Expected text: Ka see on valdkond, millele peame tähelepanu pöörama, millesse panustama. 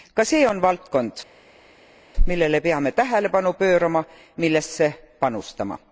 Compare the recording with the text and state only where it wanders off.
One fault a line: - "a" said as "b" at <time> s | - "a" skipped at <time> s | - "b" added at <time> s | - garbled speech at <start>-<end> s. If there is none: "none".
none